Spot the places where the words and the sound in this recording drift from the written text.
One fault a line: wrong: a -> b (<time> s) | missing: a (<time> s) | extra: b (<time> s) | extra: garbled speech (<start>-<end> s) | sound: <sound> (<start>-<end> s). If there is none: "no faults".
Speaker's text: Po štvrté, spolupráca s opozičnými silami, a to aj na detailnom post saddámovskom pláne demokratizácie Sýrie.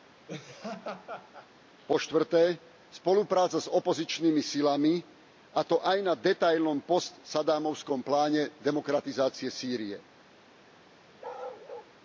sound: laugh (0.3-1.5 s)
sound: bark (11.2-11.9 s)